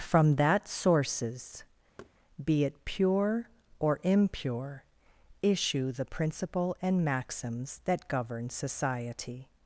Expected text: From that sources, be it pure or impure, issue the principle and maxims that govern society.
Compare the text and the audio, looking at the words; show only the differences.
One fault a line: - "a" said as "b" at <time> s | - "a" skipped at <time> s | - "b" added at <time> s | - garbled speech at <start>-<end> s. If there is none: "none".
none